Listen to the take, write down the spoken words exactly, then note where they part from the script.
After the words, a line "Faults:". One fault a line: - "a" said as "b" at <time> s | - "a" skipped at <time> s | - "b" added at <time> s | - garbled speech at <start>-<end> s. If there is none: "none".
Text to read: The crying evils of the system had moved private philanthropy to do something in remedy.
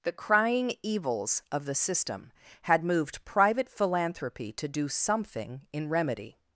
The crying evils of the system had moved private philanthropy to do something in remedy.
Faults:
none